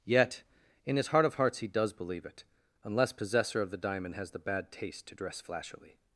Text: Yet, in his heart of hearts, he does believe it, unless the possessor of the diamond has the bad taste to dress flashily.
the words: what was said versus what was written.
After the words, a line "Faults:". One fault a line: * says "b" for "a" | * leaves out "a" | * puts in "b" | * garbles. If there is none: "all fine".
Yet, in his heart of hearts, he does believe it, unless possessor of the diamond has the bad taste to dress flashily.
Faults:
* leaves out "the"